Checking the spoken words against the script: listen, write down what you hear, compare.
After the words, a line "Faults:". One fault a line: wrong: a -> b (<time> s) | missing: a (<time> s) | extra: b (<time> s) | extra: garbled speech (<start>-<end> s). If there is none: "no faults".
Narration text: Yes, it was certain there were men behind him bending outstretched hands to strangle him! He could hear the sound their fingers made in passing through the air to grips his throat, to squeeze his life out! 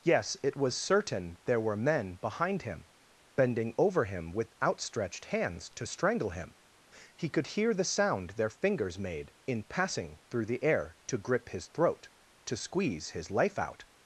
Yes, it was certain there were men behind him bending over him with outstretched hands to strangle him! He could hear the sound their fingers made in passing through the air to grip his throat, to squeeze his life out!
Faults:
extra: over him with (3.8 s)
wrong: grips -> grip (11.2 s)